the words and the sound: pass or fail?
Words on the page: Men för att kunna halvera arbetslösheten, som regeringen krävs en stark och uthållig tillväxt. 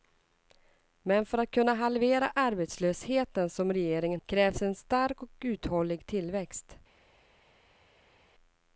pass